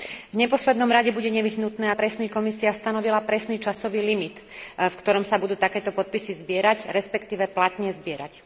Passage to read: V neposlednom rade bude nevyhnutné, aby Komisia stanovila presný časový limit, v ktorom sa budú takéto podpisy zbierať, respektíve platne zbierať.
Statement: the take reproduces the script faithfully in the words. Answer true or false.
false